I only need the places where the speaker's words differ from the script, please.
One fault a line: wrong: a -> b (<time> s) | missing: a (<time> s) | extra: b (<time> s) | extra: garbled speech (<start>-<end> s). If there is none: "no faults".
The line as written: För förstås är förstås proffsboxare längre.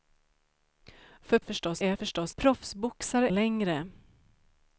no faults